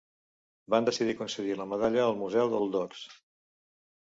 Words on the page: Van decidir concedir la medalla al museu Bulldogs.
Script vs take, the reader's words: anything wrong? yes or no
no